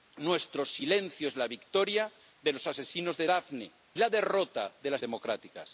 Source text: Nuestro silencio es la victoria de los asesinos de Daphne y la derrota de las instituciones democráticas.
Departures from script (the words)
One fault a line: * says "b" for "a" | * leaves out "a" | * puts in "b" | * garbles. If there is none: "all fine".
* leaves out "y"
* leaves out "instituciones"